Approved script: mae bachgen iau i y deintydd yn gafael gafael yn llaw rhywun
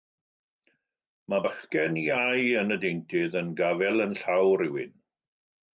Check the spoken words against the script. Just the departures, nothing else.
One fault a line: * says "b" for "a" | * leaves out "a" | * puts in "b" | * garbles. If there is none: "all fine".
* says "yn" for "i"
* leaves out "gafael"